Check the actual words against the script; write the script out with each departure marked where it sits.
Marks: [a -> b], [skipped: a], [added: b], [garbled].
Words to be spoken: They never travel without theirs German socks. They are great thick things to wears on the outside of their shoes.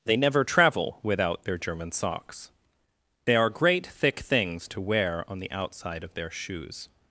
They never travel without [theirs -> their] German socks. They are great thick things to [wears -> wear] on the outside of their shoes.